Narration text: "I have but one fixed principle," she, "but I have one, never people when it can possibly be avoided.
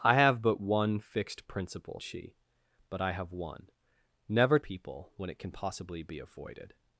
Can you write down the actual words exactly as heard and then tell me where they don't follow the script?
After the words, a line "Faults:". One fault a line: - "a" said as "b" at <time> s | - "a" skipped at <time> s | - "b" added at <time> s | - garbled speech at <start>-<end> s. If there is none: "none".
"I have but one fixed principle," she, "but I have one, never people when it can possibly be avoided.
Faults:
none